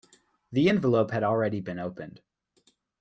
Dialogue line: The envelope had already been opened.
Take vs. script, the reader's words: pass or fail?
pass